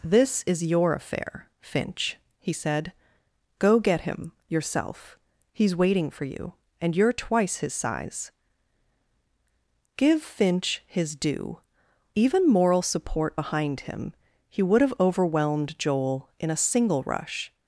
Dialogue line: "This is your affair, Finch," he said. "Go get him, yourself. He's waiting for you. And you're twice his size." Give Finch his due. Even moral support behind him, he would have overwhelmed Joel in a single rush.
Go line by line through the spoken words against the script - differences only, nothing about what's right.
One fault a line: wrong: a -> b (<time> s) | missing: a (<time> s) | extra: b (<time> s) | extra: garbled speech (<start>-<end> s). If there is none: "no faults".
no faults